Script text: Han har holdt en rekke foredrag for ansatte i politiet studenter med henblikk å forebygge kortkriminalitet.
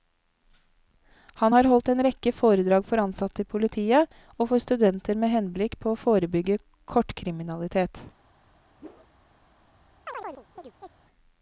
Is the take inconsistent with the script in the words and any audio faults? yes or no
yes